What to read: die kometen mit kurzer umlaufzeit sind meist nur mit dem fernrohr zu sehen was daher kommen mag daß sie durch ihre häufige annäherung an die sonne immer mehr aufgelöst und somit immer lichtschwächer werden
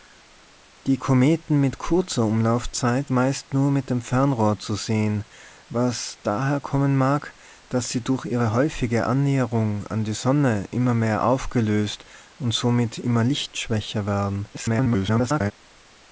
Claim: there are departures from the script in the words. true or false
true